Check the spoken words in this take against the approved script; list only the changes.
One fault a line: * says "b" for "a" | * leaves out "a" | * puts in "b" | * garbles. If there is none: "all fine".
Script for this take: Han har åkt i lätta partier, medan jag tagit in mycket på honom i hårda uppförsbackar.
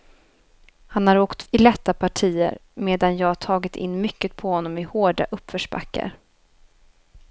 all fine